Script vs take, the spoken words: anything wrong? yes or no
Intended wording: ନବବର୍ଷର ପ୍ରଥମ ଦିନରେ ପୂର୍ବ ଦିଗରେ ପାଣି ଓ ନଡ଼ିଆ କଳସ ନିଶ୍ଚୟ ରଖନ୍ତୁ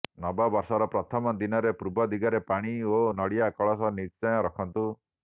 no